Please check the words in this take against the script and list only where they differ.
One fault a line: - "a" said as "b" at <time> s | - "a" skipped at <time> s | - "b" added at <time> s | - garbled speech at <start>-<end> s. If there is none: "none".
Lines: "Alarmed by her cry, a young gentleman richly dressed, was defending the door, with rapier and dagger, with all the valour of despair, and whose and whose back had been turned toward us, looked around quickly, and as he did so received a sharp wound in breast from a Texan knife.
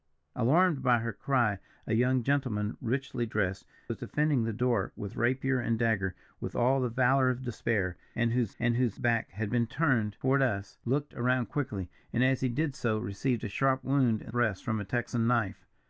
none